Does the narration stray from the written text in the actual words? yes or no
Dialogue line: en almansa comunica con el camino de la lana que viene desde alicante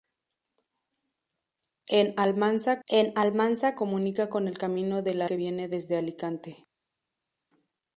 yes